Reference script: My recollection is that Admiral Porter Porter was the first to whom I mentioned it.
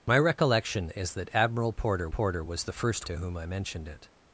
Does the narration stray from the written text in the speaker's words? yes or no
no